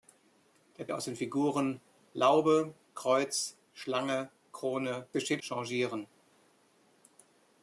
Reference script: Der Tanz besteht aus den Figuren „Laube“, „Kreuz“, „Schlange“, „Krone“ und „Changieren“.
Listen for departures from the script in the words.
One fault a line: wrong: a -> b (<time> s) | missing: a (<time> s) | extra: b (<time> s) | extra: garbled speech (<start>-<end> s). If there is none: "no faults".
missing: Tanz besteht (0.9 s)
wrong: und -> besteht (5.1 s)